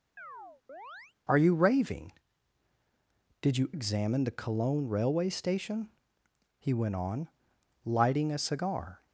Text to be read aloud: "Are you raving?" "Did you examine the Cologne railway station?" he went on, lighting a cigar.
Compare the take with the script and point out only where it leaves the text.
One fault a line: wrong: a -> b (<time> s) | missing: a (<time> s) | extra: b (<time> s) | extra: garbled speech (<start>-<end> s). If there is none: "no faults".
no faults